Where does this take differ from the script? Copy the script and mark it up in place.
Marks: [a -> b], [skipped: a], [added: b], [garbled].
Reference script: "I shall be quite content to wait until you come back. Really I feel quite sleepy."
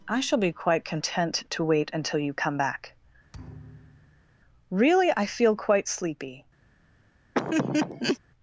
"I shall be quite content to wait until you come back. Really I feel quite sleepy."